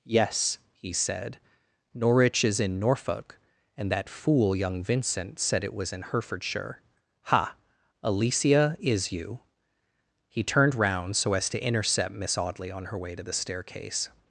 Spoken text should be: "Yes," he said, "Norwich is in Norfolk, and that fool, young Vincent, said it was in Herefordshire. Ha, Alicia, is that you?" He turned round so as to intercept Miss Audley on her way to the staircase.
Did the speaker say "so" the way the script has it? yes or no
yes